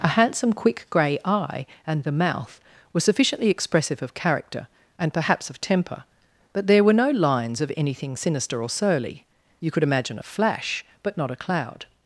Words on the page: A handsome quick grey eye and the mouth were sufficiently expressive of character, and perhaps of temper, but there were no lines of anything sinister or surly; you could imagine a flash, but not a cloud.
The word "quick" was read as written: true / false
true